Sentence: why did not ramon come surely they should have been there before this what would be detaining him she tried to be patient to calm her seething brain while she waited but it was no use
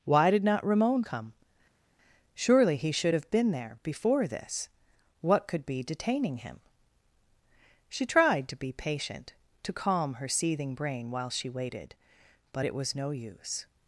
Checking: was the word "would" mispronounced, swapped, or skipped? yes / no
yes